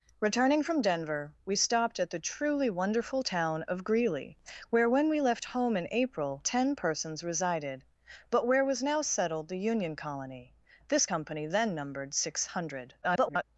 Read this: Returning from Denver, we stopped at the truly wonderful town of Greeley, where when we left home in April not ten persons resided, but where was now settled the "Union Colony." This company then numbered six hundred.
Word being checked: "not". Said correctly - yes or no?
no